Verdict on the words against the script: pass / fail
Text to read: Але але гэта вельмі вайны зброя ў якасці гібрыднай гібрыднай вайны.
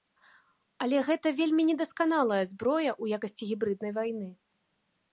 fail